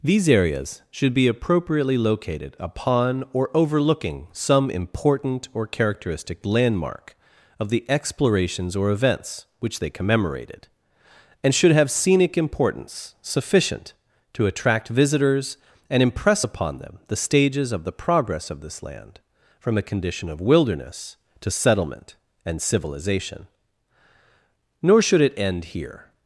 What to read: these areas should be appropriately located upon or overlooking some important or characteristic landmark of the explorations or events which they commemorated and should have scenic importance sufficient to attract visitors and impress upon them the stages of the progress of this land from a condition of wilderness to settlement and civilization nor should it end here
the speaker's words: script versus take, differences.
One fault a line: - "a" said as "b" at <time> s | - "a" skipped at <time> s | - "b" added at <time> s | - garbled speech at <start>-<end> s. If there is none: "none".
none